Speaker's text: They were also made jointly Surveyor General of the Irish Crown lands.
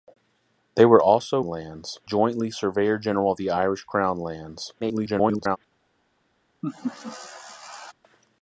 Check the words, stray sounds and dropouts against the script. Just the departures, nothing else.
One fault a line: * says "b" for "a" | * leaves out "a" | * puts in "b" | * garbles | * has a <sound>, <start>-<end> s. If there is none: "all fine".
* says "lands" for "made"
* garbles
* has a laugh, 6.6-7.9 s